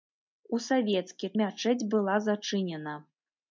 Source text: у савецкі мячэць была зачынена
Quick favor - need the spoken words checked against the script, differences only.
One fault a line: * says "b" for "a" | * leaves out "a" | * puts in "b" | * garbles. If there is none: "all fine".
all fine